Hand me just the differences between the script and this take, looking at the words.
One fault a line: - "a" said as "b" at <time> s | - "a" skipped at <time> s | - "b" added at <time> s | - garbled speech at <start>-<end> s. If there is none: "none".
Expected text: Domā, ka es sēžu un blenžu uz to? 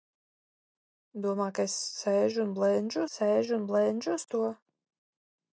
- "sēžu un blenžu" added at 3.1 s